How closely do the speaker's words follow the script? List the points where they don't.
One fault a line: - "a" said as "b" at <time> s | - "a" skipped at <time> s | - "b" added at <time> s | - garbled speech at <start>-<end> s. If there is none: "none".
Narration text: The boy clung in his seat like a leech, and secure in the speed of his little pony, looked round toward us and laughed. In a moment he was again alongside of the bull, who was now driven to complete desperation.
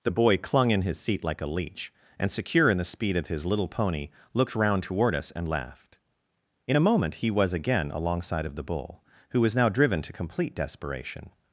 none